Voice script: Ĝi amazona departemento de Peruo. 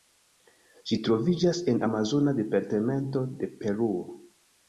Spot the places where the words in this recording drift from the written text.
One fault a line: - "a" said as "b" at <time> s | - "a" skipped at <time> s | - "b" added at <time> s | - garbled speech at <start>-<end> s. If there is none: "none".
- "troviĝas en" added at 1.1 s